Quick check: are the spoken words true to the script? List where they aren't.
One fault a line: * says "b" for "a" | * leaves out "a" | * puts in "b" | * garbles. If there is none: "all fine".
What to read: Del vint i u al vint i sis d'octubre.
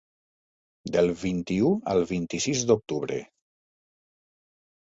all fine